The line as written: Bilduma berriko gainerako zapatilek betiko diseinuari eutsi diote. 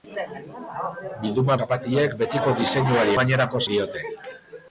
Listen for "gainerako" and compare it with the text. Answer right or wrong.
wrong